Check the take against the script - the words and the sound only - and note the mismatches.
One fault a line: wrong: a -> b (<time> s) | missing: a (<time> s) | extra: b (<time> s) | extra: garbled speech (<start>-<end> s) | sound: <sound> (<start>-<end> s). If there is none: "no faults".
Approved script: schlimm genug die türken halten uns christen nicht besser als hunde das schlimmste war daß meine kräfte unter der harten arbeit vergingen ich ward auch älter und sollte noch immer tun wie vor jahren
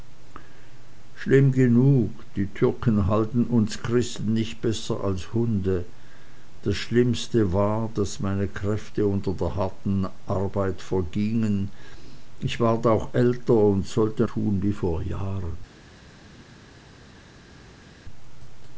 missing: noch immer (14.3 s)